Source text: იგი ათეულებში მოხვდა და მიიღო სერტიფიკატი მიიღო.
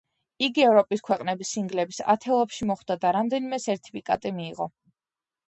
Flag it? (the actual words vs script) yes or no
yes